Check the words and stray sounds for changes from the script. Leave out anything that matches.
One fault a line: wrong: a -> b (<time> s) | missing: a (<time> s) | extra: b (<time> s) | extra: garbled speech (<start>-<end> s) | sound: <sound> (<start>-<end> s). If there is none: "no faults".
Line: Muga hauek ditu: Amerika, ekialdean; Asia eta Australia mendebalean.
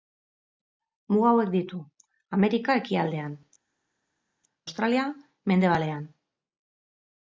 missing: Asia eta (3.4 s)